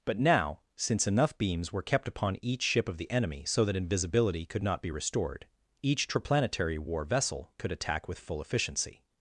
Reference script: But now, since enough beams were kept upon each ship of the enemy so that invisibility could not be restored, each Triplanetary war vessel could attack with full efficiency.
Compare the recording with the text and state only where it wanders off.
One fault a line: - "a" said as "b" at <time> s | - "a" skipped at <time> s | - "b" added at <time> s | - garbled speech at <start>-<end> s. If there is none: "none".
none